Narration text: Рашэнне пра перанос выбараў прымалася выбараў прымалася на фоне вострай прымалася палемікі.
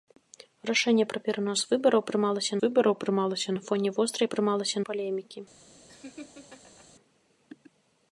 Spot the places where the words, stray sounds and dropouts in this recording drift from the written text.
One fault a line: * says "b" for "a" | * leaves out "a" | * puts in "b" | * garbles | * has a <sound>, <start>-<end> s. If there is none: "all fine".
* has a laugh, 5.9-6.9 s